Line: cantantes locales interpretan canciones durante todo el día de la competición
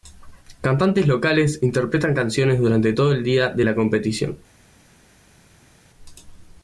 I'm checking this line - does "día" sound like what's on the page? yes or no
yes